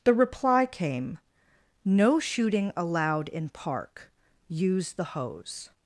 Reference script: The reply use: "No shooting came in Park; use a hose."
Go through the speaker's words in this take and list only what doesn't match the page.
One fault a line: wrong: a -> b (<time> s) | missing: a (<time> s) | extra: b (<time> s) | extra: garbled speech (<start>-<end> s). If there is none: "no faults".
wrong: use -> came (0.7 s)
wrong: came -> allowed (2.8 s)
wrong: a -> the (4.9 s)